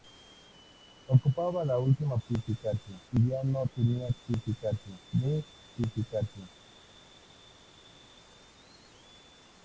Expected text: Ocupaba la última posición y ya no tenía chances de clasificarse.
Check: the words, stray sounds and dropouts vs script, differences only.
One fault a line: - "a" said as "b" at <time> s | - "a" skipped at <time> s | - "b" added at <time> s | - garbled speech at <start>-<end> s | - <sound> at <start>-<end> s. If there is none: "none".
- "posición" said as "clasificarse" at 2.3 s
- "chances" said as "clasificarse" at 4.3 s